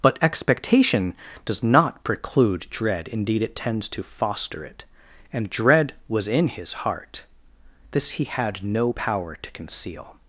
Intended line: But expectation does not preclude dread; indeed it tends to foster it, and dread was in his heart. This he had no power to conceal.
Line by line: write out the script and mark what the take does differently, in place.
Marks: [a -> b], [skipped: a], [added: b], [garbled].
But expectation does not preclude dread; indeed it tends to foster it, and dread was in his heart. This he had no power to conceal.